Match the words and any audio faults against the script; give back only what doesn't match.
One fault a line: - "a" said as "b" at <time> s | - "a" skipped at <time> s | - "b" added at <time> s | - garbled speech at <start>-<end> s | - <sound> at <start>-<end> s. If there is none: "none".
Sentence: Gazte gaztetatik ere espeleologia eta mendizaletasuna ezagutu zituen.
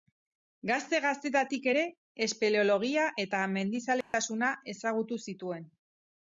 - dropout at 4.0-4.1 s